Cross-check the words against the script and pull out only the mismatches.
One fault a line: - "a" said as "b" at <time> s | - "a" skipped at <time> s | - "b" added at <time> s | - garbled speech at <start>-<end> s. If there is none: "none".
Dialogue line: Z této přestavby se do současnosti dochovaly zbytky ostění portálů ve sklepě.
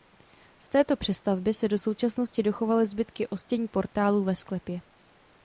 none